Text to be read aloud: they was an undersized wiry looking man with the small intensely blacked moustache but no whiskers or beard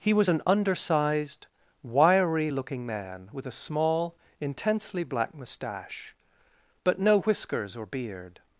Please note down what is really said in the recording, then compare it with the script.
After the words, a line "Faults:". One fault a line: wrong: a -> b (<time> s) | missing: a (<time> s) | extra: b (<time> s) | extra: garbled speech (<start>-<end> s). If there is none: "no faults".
he was an undersized wiry looking man with a small intensely black moustache but no whiskers or beard
Faults:
wrong: they -> he (0.0 s)
wrong: the -> a (3.5 s)
wrong: blacked -> black (5.0 s)